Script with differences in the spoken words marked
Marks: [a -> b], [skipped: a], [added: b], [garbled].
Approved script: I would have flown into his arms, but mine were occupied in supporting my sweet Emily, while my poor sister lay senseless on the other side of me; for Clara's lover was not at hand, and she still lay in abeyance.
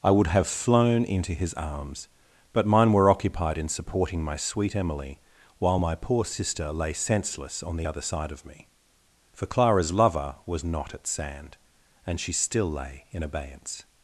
I would have flown into his arms, but mine were occupied in supporting my sweet Emily, while my poor sister lay senseless on the other side of me; for Clara's lover was not at [hand, -> sand] and she still lay in abeyance.